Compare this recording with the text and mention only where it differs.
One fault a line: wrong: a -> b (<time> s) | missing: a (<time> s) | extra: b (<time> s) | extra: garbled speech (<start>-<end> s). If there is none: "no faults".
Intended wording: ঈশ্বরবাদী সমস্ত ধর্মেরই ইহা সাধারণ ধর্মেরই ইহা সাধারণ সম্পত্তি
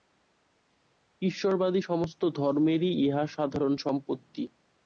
missing: ধর্মেরই ইহা সাধারণ (3.7 s)